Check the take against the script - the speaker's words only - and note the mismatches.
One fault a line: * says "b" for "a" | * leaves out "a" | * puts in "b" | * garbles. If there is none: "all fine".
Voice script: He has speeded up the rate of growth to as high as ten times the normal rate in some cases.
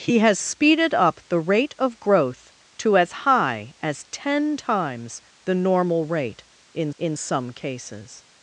* puts in "in"